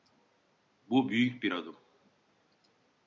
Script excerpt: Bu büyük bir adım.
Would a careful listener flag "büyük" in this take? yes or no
no